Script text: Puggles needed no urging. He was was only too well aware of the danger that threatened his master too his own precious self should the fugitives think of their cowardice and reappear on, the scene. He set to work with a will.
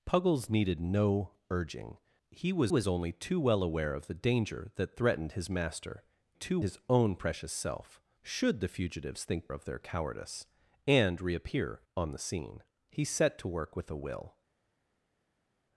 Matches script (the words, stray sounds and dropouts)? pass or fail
pass